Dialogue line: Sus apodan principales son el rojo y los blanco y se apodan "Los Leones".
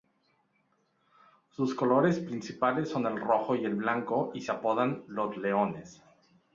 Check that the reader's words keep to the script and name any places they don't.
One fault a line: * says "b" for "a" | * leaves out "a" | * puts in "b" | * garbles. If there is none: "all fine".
* says "colores" for "apodan"
* says "el" for "los"